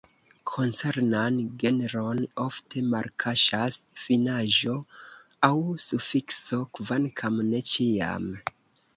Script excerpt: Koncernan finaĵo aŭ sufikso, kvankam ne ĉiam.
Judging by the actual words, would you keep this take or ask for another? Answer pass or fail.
fail